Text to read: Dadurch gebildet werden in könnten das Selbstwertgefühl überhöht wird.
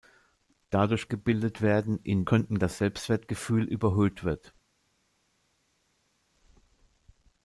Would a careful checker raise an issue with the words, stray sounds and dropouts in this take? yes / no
no